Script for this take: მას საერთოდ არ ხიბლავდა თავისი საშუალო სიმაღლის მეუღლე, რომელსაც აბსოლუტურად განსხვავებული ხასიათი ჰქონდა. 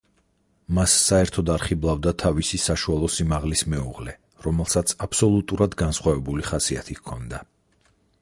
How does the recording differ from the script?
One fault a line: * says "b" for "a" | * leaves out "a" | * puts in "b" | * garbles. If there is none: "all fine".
all fine